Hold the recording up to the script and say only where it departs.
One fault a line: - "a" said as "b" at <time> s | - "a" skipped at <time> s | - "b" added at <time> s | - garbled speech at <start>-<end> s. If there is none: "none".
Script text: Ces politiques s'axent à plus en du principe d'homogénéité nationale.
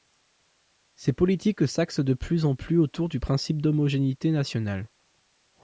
- "à" said as "de" at 2.0 s
- "plus autour" added at 2.5 s